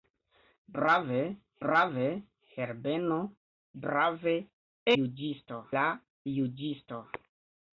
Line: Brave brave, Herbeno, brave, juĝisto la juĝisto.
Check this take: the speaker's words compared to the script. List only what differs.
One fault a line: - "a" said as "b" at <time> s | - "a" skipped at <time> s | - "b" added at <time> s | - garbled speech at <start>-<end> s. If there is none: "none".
none